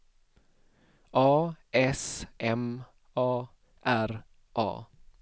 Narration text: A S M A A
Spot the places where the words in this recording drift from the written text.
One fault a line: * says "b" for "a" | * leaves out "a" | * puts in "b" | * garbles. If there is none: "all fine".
* puts in "R"